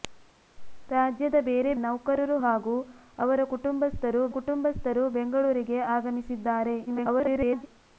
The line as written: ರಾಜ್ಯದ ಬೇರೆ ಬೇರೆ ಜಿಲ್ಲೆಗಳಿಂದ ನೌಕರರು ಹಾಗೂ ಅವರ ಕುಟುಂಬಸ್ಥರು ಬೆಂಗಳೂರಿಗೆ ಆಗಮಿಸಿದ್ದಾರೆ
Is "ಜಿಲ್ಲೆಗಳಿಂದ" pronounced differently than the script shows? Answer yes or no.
yes